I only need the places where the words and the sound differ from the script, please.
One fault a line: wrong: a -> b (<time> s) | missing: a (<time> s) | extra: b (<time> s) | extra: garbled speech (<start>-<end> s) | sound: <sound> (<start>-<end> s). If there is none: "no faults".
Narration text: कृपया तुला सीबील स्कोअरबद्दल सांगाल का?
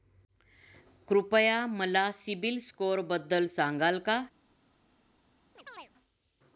wrong: तुला -> मला (1.7 s)
sound: chirp (5.6-5.9 s)